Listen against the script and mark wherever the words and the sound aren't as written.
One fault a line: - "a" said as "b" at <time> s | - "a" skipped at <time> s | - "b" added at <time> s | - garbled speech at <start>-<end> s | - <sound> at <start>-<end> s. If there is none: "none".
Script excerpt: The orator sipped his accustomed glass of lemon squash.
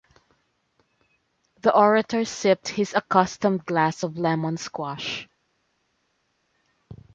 none